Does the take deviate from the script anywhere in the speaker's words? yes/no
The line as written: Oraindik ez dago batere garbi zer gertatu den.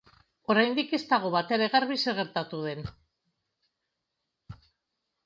no